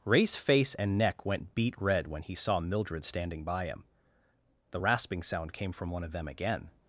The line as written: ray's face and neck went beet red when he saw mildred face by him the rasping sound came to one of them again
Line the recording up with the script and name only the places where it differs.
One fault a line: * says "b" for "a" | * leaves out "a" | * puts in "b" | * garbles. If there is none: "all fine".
* says "standing" for "face"
* says "from" for "to"